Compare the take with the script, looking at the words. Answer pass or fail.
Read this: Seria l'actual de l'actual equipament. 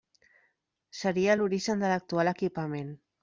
fail